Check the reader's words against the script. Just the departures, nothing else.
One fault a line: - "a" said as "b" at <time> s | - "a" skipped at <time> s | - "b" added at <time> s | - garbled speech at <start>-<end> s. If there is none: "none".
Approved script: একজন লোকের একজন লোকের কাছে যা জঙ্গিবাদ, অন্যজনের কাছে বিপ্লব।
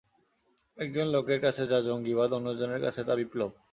- "একজন লোকের" skipped at 1.4 s
- "তা" added at 3.0 s